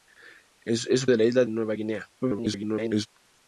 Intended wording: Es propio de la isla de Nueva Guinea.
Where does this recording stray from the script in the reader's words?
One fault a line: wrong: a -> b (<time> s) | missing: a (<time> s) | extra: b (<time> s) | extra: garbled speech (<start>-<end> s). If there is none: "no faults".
missing: propio (1.1 s)
missing: de (1.4 s)
extra: garbled speech (2.2-3.1 s)